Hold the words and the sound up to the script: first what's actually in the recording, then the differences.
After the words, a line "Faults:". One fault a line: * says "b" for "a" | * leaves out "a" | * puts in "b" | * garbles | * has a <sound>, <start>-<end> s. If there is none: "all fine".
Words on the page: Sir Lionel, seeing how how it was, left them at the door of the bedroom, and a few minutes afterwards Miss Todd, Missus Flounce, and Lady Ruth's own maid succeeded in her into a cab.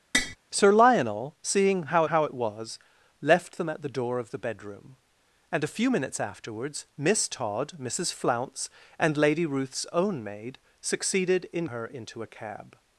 Sir Lionel, seeing how how it was, left them at the door of the bedroom, and a few minutes afterwards Miss Todd, Missus Flounce, and Lady Ruth's own maid succeeded in her into a cab.
Faults:
* has a tap, 0.1-0.4 s